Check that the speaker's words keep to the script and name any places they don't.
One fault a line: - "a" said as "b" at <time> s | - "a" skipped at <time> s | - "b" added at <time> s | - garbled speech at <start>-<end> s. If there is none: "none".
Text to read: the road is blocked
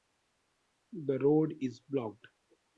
none